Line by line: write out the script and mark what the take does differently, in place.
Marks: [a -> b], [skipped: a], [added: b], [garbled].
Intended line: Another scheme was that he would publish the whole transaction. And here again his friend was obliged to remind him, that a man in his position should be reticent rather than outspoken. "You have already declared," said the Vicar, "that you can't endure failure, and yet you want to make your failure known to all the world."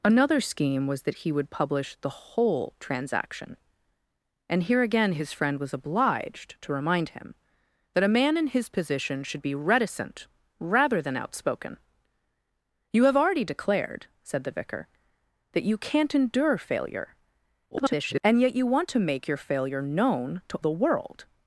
Another scheme was that he would publish the whole transaction. And here again his friend was obliged to remind him, that a man in his position should be reticent rather than outspoken. "You have already declared," said the Vicar, "that you can't endure failure, [garbled] and yet you want to make your failure known to [skipped: all] the world."